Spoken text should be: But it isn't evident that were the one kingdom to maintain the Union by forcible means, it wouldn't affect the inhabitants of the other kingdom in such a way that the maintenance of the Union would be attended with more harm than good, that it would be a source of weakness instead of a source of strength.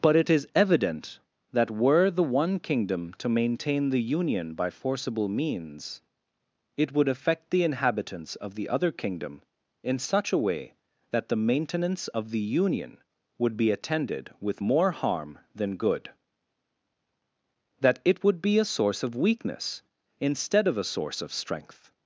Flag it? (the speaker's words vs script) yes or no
yes